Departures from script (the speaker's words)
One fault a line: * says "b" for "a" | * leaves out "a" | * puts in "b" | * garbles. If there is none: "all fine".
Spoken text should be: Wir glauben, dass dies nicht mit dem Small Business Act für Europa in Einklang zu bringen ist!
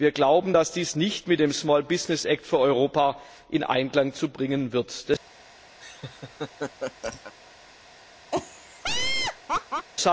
all fine